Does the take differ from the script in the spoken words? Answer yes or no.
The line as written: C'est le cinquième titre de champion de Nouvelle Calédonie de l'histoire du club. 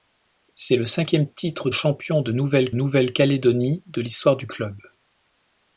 yes